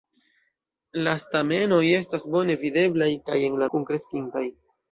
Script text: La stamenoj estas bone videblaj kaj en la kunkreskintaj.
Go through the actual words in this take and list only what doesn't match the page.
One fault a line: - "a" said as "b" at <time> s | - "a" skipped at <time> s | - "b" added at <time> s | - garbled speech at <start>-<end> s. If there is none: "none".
none